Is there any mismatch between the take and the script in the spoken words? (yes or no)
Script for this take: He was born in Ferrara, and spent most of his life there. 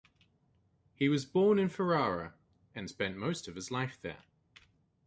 no